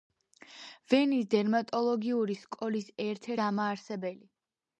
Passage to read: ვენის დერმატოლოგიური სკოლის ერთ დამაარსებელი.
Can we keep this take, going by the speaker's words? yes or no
yes